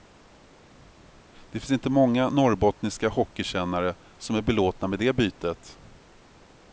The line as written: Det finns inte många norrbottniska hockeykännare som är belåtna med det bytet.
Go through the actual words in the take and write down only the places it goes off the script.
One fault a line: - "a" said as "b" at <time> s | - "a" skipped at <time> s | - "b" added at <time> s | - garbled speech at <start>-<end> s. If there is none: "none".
none